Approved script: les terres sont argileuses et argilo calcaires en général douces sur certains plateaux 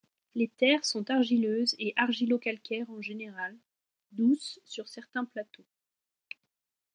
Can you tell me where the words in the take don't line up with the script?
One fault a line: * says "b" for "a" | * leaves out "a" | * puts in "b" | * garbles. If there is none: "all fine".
all fine